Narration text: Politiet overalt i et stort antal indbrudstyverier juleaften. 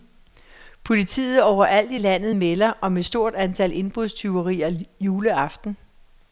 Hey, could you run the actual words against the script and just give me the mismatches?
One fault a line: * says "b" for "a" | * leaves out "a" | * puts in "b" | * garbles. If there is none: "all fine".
* puts in "landet melder om"